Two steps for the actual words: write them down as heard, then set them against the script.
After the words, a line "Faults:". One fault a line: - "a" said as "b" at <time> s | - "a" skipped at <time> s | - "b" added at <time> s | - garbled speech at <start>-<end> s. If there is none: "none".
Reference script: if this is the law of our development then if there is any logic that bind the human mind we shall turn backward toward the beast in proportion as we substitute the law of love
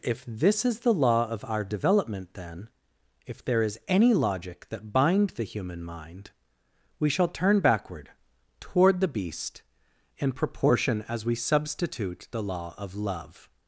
if this is the law of our development then if there is any logic that bind the human mind we shall turn backward toward the beast in proportion as we substitute the law of love
Faults:
none